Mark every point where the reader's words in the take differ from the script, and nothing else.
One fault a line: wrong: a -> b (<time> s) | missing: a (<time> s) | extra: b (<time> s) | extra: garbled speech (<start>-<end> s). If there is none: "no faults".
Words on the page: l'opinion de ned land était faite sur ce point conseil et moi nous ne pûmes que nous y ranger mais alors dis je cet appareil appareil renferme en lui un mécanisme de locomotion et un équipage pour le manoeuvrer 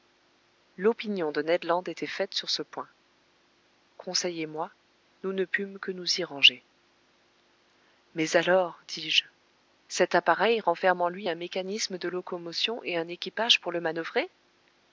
missing: appareil (10.6 s)